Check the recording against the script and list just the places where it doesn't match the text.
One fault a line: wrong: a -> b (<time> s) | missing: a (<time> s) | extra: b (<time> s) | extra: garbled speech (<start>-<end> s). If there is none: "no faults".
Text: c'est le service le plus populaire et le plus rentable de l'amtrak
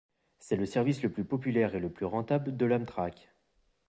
no faults